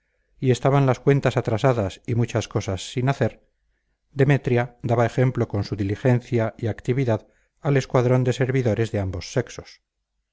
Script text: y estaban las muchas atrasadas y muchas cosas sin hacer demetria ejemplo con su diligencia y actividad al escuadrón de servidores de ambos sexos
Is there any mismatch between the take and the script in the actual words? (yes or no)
yes